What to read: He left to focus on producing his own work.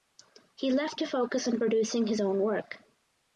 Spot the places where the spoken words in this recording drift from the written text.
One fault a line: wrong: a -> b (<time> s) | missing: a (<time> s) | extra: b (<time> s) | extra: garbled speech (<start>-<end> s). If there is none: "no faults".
no faults